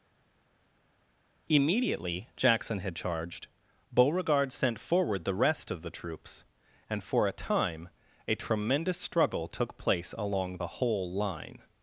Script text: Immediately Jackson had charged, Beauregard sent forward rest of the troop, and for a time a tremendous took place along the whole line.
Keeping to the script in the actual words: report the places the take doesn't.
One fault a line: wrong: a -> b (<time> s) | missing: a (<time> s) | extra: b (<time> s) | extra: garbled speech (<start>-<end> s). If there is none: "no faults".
extra: the (5.2 s)
wrong: troop -> troops (5.9 s)
extra: struggle (9.0 s)